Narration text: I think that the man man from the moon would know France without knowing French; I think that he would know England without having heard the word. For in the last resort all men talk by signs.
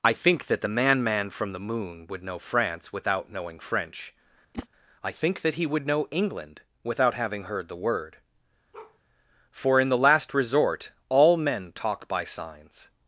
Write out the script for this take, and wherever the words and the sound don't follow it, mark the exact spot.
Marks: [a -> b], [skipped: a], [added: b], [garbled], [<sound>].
I think that the man man from the moon would know France without knowing French; [whoosh] I think that he would know England without having heard the word. [bark] For in the last resort all men talk by signs.